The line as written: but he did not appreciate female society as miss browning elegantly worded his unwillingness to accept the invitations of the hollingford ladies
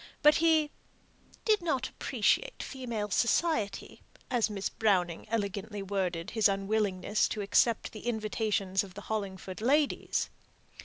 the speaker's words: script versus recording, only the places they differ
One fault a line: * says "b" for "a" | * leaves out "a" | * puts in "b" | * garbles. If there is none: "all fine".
all fine